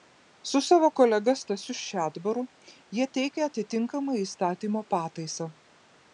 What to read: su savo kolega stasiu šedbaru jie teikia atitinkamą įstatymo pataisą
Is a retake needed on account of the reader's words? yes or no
no